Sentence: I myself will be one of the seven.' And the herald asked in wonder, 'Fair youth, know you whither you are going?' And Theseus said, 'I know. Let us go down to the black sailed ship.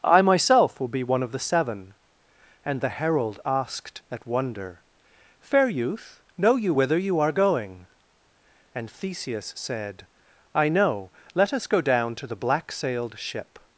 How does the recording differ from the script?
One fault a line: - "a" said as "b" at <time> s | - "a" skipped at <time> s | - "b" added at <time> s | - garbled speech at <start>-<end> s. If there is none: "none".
- "in" said as "at" at 4.1 s